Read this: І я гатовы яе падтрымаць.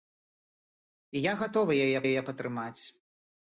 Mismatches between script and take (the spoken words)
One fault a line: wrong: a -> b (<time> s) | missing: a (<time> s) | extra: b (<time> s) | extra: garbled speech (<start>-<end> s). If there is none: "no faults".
extra: яе (2.1 s)